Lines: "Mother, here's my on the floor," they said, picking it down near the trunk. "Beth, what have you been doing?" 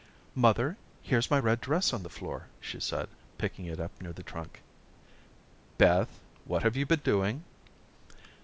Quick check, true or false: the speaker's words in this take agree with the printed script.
false